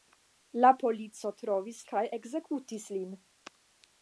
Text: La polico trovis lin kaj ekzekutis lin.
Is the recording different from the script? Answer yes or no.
yes